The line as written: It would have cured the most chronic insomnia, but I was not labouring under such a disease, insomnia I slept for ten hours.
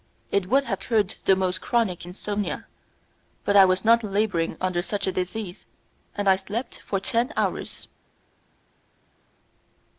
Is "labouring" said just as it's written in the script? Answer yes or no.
yes